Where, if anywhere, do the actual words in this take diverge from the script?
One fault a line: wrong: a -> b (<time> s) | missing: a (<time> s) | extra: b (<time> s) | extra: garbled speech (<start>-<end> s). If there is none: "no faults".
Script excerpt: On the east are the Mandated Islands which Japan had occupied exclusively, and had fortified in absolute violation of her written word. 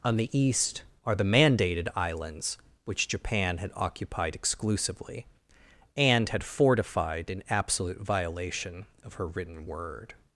no faults